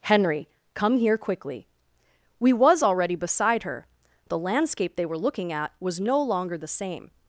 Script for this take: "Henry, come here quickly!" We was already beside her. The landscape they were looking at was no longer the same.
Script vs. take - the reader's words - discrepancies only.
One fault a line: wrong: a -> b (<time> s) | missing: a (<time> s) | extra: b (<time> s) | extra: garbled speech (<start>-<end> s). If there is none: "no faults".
no faults